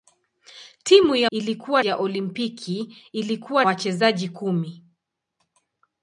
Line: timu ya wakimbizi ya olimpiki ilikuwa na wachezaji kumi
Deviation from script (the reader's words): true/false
true